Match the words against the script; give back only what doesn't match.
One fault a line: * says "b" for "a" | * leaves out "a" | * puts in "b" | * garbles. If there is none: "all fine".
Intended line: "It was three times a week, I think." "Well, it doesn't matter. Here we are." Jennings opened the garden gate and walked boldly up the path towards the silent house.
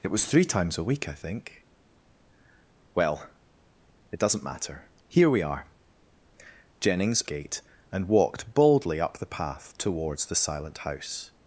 * leaves out "opened the garden"